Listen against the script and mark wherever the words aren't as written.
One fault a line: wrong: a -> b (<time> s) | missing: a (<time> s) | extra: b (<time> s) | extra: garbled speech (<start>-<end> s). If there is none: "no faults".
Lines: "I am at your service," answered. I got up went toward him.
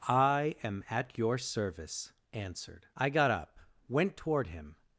no faults